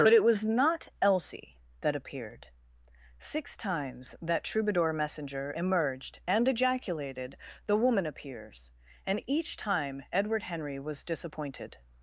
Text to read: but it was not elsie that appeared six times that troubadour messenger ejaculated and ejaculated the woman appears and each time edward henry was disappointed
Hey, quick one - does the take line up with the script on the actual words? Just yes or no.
no